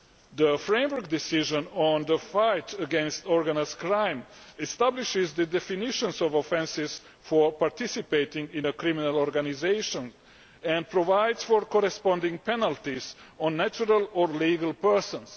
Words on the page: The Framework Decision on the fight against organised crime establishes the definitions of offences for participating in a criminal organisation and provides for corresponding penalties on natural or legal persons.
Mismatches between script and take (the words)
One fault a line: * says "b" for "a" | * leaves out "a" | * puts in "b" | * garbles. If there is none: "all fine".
all fine